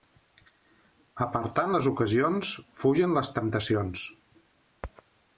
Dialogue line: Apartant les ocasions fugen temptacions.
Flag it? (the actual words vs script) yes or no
yes